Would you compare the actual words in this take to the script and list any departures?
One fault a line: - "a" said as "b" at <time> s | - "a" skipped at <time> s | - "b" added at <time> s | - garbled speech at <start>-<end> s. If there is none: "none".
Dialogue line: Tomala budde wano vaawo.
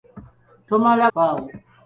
- "budde wano" skipped at 1.1 s